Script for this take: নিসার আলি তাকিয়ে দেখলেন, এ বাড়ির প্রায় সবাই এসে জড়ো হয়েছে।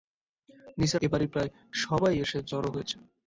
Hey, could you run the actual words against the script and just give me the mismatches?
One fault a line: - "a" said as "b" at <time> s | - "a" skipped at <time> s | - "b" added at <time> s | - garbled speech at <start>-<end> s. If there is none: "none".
- "আলি তাকিয়ে দেখলেন" skipped at 1.0 s